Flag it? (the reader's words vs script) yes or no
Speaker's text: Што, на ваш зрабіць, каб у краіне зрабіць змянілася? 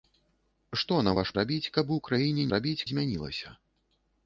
no